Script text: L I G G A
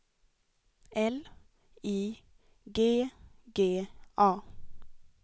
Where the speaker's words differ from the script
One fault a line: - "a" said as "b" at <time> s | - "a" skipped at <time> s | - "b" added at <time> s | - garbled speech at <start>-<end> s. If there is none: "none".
none